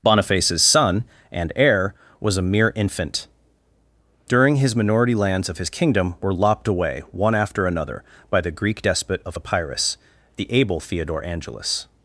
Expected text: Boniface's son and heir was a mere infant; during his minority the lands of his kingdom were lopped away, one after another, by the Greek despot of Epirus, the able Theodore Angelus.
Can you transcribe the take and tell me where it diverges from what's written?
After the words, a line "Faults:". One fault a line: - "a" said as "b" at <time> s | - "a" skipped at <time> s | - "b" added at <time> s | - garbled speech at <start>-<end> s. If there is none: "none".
Boniface's son and heir was a mere infant; during his minority lands of his kingdom were lopped away, one after another, by the Greek despot of Epirus, the able Theodore Angelus.
Faults:
- "the" skipped at 5.1 s